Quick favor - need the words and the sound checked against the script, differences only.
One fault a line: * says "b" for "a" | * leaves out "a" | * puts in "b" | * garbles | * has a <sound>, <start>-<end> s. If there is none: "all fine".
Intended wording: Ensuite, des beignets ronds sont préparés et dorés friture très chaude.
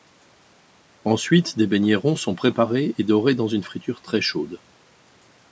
* puts in "dans une"